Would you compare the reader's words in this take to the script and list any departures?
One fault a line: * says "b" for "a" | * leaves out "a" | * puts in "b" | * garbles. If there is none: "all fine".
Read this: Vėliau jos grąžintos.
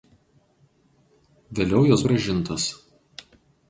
all fine